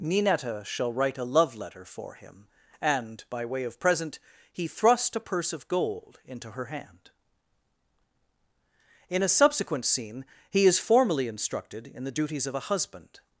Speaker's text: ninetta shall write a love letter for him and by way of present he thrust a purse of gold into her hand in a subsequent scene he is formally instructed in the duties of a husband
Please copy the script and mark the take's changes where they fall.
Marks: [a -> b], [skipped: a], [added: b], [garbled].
ninetta shall write a love letter for him and by way of present he thrust a purse of gold into her hand in a subsequent scene he is formally instructed in the duties of a husband